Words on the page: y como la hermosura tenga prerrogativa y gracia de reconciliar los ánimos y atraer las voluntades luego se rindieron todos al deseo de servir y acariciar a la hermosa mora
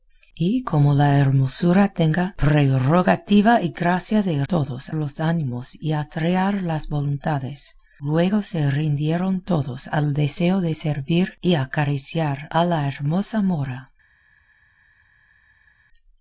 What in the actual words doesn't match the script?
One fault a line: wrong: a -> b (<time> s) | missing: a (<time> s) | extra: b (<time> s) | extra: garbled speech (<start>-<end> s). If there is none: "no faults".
wrong: reconciliar -> todos (4.4 s)